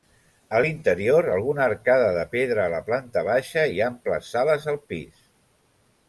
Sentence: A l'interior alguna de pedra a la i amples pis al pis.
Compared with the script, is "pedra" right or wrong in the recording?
right